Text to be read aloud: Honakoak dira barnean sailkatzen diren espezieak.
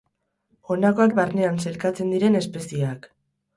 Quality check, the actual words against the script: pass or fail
fail